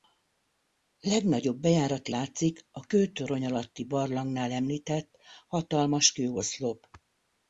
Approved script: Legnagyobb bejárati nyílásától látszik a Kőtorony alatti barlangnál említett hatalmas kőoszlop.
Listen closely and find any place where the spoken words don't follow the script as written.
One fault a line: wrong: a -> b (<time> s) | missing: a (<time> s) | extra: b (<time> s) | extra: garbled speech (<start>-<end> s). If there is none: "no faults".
missing: nyílásától (2.1 s)